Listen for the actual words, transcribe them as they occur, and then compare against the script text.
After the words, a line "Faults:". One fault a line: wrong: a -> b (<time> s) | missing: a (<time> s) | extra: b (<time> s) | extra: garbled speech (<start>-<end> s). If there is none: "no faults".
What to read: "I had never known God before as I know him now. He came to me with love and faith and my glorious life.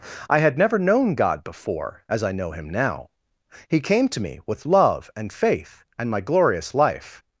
"I had never known God before as I know him now. He came to me with love and faith and my glorious life.
Faults:
no faults